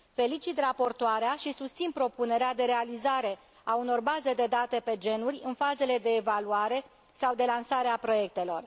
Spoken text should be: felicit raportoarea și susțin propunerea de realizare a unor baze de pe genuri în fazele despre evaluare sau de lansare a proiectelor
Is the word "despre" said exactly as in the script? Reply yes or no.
no